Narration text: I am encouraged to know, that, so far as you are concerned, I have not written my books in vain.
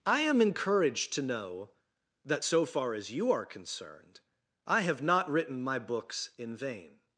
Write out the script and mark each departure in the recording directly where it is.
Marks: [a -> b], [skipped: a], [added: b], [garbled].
I am encouraged to know, that, so far as you are concerned, I have not written my books in vain.